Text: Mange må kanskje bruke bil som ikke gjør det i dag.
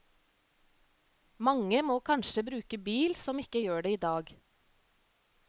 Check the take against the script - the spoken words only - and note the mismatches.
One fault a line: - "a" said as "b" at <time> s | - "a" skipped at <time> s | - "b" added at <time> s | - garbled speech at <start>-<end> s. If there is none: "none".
none